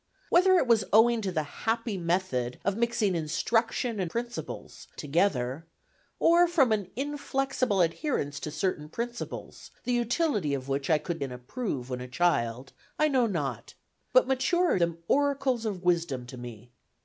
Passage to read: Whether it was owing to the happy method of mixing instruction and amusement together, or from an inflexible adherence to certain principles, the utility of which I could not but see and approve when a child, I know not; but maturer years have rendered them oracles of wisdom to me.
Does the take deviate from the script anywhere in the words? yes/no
yes